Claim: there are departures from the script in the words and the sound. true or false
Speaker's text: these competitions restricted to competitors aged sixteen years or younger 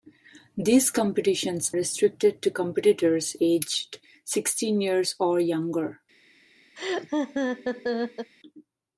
true